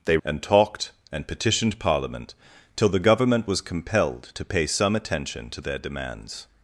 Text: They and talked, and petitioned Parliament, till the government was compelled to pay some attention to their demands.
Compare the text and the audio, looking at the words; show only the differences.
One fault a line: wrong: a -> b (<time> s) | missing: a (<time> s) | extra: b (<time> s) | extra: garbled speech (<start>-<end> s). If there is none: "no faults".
no faults